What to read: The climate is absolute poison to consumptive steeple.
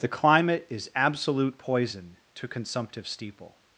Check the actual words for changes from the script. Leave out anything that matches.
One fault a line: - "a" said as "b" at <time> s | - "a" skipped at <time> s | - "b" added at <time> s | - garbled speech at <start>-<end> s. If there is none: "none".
none